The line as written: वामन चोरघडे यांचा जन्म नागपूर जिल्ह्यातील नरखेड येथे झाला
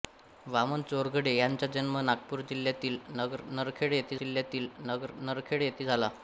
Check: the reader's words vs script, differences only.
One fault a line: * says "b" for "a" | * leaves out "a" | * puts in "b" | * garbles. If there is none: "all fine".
* puts in "जिल्ह्यातील नरखेड येथे"